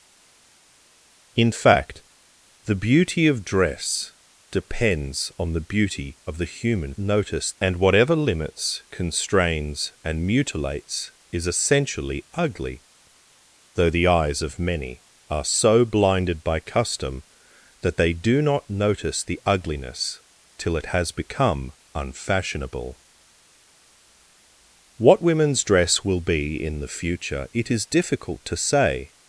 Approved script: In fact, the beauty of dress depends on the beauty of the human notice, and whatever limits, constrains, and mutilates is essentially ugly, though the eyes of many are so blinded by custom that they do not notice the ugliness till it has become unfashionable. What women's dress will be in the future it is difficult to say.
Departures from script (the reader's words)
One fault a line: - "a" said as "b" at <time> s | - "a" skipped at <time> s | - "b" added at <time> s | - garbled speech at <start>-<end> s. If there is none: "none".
none